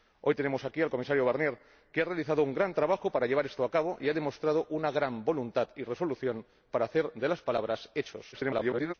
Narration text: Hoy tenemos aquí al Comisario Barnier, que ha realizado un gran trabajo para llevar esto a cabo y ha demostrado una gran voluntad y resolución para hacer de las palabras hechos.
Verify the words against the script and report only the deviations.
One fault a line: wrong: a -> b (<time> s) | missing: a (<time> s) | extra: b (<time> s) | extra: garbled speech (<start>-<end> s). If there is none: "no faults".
extra: garbled speech (8.3-8.9 s)